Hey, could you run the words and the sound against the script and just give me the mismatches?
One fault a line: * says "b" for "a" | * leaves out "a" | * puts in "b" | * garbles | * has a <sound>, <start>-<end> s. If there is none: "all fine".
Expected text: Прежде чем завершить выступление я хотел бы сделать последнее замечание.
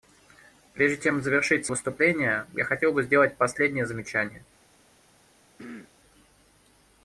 * has a throat clearing, 5.6-5.9 s